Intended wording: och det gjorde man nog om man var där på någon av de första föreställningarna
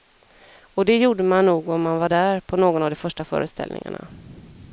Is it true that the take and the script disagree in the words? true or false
false